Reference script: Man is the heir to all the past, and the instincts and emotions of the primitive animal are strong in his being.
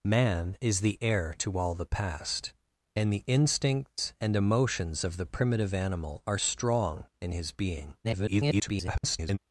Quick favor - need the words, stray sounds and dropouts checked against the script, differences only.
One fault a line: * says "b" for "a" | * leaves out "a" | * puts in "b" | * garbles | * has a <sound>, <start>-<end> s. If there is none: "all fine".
* garbles